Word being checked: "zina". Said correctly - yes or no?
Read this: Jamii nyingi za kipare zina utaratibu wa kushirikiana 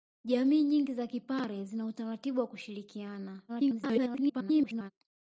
yes